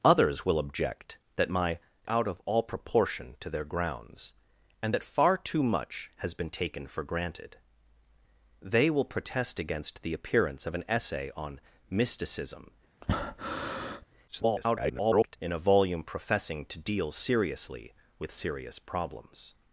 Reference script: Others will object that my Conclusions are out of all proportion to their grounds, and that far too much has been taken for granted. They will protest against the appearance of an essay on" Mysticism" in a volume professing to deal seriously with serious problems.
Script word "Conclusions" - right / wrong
wrong